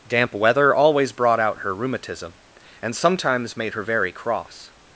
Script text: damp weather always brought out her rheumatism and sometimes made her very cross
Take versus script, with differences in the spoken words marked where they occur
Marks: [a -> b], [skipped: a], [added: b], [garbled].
damp weather always brought out her rheumatism and sometimes made her very cross